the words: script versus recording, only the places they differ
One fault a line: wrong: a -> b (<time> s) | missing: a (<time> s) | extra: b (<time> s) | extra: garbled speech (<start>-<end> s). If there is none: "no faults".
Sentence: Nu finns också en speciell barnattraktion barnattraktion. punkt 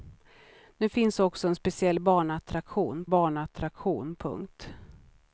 no faults